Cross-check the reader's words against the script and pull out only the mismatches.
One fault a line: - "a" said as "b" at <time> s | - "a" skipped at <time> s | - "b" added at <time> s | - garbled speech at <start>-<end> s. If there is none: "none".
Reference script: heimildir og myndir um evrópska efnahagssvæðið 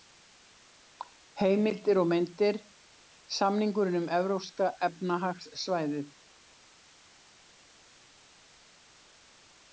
- "samningurinn" added at 3.4 s